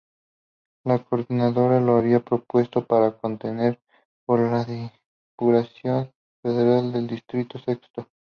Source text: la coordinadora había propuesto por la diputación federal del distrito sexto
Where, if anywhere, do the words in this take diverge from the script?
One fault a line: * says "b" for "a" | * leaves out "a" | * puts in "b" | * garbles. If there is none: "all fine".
* puts in "lo"
* puts in "para contender"